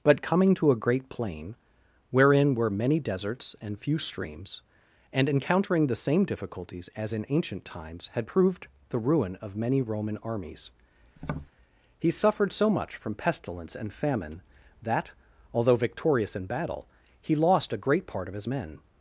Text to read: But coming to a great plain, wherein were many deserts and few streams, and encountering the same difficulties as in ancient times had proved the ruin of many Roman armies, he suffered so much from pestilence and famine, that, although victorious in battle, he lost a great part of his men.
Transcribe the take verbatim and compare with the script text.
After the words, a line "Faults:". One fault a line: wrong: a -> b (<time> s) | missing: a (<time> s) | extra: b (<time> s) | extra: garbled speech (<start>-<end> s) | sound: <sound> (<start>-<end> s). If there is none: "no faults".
But coming to a great plain, wherein were many deserts and few streams, and encountering the same difficulties as in ancient times had proved the ruin of many Roman armies, he suffered so much from pestilence and famine, that, although victorious in battle, he lost a great part of his men.
Faults:
sound: tap (11.2-11.5 s)